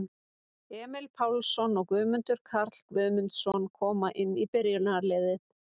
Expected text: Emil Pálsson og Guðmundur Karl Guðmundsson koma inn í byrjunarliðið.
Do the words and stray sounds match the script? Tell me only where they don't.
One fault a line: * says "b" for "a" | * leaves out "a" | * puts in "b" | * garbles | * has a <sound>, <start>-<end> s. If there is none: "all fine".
all fine